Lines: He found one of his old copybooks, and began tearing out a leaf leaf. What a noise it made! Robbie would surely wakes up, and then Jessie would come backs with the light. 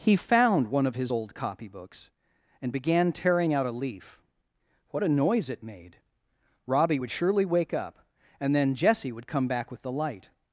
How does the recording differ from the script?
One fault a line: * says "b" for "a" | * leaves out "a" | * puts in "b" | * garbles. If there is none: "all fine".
* leaves out "leaf"
* says "wake" for "wakes"
* says "back" for "backs"